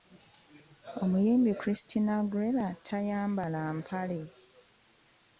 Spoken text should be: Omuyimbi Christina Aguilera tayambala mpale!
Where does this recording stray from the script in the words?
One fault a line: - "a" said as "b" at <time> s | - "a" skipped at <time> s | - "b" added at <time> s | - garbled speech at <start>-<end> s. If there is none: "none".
none